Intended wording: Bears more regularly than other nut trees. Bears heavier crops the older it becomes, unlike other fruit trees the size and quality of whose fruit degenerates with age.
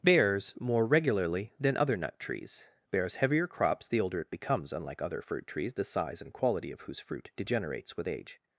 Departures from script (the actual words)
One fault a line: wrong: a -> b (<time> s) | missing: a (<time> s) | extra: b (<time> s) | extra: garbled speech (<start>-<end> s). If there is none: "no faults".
no faults